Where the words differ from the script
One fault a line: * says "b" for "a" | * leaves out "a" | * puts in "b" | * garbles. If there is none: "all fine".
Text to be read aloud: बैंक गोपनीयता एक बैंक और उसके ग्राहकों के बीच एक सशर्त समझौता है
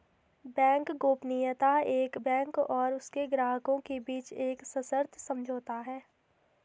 all fine